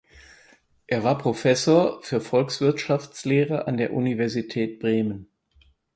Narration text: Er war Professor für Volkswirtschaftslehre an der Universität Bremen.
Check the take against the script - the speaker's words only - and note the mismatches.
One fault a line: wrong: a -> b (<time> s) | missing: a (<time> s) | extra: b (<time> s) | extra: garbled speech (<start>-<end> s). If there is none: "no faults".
no faults